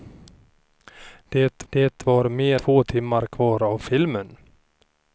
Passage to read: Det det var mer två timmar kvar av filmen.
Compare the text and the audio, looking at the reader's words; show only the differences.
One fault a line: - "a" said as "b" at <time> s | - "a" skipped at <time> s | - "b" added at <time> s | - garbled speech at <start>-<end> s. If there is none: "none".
none